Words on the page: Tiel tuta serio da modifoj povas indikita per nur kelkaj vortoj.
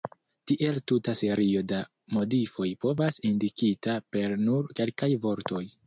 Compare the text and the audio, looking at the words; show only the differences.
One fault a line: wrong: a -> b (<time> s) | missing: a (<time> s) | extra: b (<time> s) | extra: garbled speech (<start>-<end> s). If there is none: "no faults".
no faults